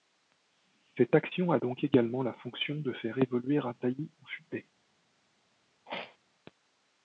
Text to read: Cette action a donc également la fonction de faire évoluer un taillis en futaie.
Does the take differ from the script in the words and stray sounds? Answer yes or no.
yes